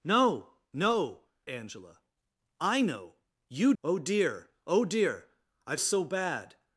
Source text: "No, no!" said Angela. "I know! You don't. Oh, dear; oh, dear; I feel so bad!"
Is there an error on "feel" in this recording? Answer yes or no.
yes